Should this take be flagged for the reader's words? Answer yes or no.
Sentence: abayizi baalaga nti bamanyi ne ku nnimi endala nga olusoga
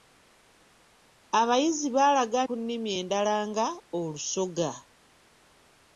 yes